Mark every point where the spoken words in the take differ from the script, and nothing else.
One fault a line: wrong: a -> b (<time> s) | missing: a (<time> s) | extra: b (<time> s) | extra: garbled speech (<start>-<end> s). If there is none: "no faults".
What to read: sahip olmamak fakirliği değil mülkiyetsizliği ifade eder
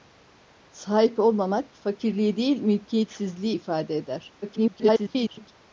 extra: garbled speech (4.4-5.5 s)